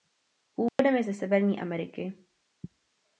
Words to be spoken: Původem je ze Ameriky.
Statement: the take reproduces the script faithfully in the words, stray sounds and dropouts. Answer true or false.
false